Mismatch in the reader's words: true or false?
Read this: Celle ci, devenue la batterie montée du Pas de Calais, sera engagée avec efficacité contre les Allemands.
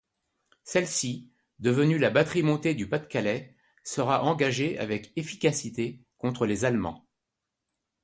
false